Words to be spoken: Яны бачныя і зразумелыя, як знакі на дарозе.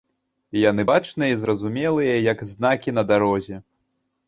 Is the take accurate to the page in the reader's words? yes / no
yes